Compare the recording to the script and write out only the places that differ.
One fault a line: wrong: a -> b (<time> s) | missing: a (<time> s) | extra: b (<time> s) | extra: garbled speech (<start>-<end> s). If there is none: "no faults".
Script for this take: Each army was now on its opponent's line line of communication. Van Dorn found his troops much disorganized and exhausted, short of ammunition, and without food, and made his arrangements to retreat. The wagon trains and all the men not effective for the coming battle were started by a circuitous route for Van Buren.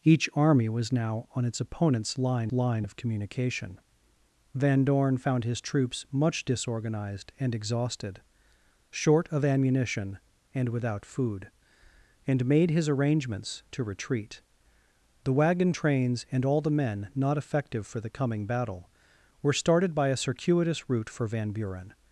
no faults